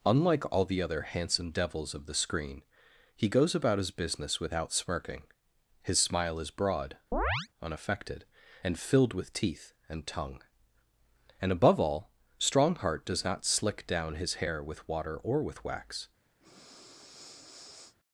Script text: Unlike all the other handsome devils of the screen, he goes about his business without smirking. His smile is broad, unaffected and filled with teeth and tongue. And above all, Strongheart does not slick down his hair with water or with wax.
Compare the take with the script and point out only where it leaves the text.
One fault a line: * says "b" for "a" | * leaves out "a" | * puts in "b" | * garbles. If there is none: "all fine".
all fine